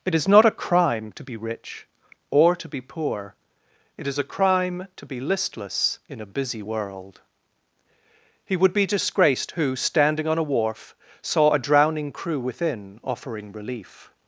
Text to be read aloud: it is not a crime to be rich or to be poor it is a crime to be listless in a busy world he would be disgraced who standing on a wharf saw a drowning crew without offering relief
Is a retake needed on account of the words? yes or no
yes